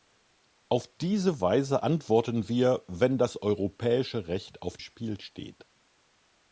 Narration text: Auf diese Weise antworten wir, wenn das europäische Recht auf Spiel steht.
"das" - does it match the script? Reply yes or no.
yes